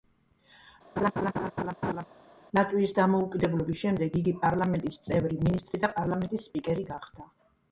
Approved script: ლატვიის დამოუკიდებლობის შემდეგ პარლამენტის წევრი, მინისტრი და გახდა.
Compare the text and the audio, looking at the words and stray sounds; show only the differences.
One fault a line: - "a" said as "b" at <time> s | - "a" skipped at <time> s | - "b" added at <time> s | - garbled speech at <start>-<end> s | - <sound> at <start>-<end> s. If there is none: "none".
- laugh at 1.0-2.0 s
- "იგი" added at 4.2 s
- "პარლამენტის სპიკერი" added at 6.0 s